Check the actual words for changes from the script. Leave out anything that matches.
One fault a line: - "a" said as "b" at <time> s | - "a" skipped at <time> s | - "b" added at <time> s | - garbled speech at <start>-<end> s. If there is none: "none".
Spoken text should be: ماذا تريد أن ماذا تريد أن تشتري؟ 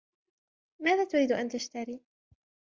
- "ماذا تريد أن" skipped at 1.5 s